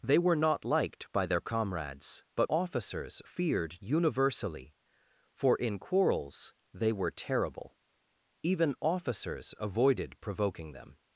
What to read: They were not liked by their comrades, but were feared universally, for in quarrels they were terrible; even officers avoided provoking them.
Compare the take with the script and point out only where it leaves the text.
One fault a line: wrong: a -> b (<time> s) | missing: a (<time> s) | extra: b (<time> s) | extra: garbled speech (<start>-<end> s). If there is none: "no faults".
wrong: were -> officers (2.5 s)